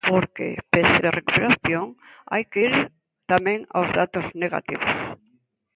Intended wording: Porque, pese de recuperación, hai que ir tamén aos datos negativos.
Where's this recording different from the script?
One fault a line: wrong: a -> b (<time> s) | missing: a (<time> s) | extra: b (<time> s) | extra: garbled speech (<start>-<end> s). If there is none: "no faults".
no faults